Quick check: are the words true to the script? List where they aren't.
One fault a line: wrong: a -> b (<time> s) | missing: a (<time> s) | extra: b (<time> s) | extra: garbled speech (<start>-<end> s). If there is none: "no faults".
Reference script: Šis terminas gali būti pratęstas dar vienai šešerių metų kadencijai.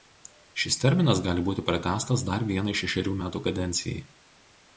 no faults